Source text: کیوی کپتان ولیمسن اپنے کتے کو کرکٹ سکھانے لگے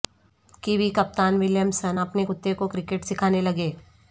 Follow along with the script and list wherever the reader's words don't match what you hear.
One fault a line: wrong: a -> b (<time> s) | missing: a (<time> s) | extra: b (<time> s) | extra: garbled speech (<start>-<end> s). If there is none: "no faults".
no faults